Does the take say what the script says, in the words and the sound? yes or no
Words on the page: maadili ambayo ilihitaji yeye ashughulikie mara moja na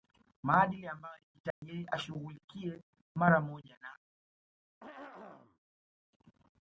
no